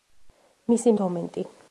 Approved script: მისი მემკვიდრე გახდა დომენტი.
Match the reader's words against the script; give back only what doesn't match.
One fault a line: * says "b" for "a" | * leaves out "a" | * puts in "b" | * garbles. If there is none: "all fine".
* leaves out "მემკვიდრე გახდა"